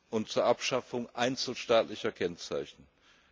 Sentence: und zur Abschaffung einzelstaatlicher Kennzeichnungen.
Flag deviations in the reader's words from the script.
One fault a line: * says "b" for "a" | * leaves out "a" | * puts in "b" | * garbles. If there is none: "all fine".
all fine